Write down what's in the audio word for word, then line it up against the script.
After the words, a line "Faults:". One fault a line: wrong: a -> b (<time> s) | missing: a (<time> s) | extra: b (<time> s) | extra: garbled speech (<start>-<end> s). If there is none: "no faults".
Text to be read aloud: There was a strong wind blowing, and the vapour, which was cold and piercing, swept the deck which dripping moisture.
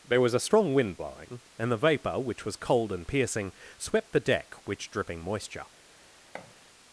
There was a strong wind blowing, and the vapour, which was cold and piercing, swept the deck which dripping moisture.
Faults:
no faults